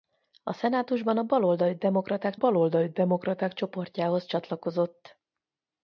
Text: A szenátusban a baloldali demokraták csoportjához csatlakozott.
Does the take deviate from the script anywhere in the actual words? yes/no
yes